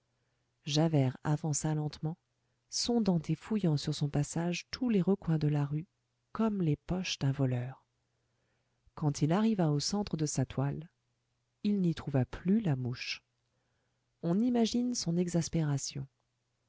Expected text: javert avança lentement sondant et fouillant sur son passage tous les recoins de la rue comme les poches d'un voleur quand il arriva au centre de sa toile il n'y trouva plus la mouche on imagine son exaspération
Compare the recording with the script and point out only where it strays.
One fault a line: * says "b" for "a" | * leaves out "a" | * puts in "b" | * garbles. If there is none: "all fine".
all fine